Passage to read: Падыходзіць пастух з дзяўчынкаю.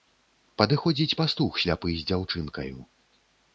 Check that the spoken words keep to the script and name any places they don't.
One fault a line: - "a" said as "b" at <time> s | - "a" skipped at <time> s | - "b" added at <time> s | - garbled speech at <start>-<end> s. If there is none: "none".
- "сляпы" added at 1.6 s